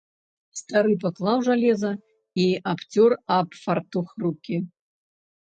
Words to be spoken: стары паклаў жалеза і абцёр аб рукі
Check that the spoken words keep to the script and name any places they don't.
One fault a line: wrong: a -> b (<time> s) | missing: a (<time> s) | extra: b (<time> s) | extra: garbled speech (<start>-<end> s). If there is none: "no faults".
extra: фартух (3.6 s)